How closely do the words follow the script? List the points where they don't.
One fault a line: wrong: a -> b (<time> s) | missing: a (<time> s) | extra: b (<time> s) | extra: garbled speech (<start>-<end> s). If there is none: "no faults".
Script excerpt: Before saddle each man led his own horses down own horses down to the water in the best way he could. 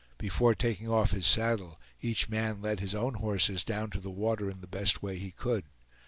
extra: taking off his (0.6 s)
missing: own horses down (3.9 s)